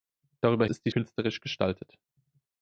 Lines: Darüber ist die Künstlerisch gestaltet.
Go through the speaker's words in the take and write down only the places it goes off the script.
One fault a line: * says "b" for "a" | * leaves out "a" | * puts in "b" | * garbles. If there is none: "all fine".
all fine